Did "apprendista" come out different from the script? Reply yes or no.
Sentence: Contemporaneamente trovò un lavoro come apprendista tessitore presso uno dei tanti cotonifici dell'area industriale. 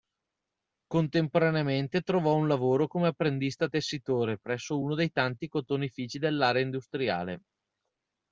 no